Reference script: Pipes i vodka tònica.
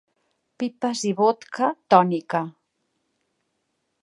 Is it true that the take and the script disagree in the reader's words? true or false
false